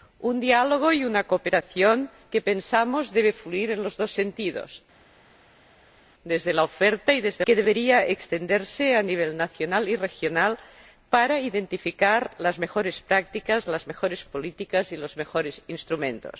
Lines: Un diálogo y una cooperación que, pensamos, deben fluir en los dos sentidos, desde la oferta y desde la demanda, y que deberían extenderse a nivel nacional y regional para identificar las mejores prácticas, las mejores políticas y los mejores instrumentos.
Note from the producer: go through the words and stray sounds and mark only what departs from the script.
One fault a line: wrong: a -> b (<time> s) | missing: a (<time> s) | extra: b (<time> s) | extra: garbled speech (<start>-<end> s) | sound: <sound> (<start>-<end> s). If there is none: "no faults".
missing: la demanda y (7.4 s)